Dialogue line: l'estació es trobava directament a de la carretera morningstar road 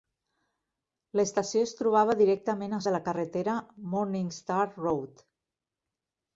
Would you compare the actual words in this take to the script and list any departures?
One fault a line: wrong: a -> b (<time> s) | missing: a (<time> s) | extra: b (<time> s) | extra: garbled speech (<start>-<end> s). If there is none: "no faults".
no faults